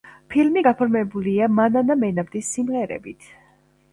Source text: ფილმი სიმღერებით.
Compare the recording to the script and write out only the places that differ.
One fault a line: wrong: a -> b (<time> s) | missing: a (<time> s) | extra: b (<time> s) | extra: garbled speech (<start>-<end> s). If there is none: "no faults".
extra: გაფორმებულია მანანა მენაბდის (0.7 s)